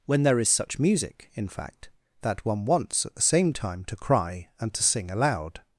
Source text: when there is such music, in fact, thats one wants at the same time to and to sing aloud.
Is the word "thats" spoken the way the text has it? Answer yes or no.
no